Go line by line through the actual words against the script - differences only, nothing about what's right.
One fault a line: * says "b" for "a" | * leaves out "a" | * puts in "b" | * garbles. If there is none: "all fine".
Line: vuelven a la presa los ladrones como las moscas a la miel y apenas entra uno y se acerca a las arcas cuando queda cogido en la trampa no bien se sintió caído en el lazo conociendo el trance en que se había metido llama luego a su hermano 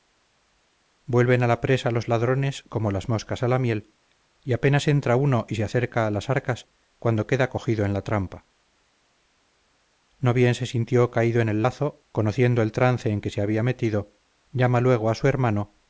all fine